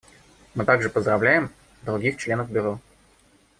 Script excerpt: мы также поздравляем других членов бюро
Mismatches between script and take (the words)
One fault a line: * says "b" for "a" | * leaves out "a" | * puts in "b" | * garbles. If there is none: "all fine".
all fine